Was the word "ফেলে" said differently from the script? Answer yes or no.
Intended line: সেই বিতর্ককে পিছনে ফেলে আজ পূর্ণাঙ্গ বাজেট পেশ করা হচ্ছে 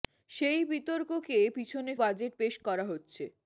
yes